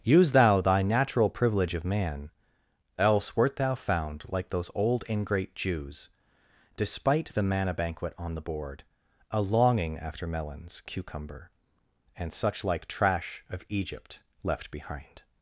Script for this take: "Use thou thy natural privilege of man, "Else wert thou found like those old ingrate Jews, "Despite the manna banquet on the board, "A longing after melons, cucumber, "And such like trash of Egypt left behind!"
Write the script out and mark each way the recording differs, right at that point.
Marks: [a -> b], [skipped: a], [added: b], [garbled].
"Use thou thy natural privilege of man, "Else wert thou found like those old ingrate Jews, "Despite the manna banquet on the board, "A longing after melons, cucumber, "And such like trash of Egypt left behind!"